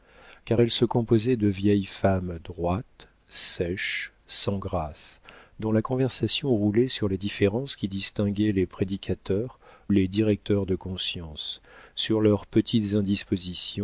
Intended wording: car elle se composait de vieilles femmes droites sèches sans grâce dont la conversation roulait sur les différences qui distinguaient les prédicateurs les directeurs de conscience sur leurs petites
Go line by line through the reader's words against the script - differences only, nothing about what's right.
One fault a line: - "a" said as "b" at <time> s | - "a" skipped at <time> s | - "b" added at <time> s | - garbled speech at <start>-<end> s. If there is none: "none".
none